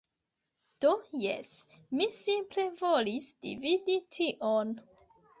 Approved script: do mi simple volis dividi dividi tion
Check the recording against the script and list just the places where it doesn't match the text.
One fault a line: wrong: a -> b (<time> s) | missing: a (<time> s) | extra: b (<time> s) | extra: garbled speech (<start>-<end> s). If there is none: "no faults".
extra: jes (1.2 s)
missing: dividi (4.0 s)